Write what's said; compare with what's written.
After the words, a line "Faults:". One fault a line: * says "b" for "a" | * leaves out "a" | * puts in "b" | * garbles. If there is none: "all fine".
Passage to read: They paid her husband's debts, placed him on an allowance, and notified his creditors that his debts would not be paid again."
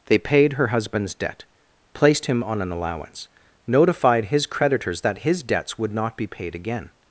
They paid her husband's debt, placed him on an allowance, notified his creditors that his debts would not be paid again."
Faults:
* says "debt" for "debts"
* leaves out "and"